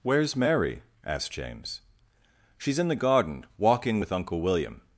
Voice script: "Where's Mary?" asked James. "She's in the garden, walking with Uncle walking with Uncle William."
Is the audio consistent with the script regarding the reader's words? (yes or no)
no